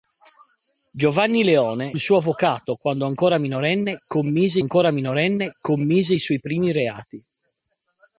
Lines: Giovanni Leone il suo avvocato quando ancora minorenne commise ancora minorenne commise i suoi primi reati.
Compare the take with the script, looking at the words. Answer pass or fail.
pass